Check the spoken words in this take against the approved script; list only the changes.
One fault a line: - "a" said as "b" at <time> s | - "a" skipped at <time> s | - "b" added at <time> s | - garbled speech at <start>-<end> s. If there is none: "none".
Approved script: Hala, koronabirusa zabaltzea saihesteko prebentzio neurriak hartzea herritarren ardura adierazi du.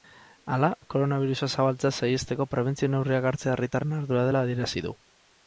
- "dela" added at 4.3 s